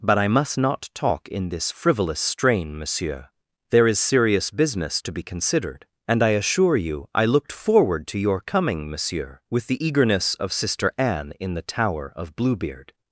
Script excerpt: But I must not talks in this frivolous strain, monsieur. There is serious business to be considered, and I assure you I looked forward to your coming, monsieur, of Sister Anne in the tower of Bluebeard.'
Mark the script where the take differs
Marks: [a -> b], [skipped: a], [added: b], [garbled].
But I must not [talks -> talk] in this frivolous strain, monsieur. There is serious business to be considered, and I assure you I looked forward to your coming, monsieur, [added: with the eagerness] of Sister Anne in the tower of Bluebeard.'